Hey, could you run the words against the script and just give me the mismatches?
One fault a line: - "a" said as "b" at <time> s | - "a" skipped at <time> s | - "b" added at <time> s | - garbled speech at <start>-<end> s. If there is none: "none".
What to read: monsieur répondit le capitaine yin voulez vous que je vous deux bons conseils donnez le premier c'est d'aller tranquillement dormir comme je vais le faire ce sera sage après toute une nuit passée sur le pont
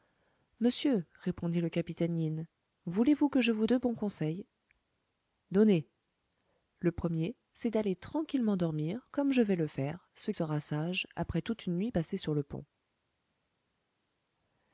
none